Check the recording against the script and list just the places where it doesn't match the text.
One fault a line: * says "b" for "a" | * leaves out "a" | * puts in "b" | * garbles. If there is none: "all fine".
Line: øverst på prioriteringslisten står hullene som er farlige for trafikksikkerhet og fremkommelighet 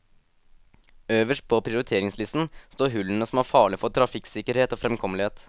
all fine